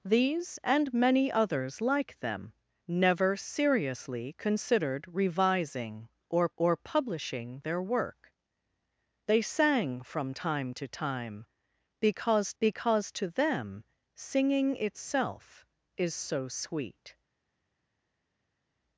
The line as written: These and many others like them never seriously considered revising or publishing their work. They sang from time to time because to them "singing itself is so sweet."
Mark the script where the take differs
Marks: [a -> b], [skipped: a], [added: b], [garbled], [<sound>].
These and many others like them never seriously considered revising or [added: or] publishing their work. They sang from time to time because [added: because] to them "singing itself is so sweet."